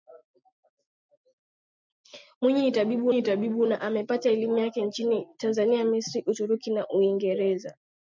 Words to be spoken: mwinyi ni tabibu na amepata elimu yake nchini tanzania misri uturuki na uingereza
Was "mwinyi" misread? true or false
false